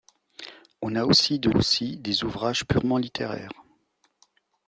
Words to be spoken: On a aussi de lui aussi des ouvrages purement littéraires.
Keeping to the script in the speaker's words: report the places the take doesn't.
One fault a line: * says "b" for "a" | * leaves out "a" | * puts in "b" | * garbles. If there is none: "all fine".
* leaves out "lui"